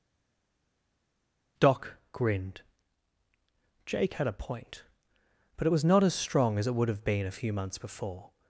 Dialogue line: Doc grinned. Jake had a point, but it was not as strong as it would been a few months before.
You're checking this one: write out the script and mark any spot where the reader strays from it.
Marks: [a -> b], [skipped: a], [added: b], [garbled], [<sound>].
Doc grinned. Jake had a point, but it was not as strong as it would [added: have] been a few months before.